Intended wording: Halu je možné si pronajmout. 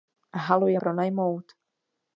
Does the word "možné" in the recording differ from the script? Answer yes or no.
yes